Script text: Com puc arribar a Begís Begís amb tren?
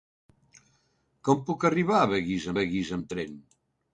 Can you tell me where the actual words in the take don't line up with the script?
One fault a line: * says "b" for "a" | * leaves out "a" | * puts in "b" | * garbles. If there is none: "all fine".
all fine